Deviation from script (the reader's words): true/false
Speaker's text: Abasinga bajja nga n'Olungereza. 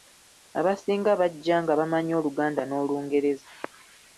true